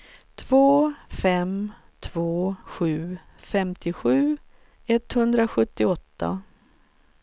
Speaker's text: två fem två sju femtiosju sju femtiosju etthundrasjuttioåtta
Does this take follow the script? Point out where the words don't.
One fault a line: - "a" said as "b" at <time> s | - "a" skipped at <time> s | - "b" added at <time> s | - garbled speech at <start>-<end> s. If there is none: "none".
- "sju femtiosju" skipped at 4.4 s